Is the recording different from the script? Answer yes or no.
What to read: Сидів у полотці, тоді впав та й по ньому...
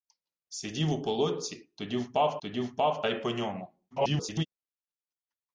yes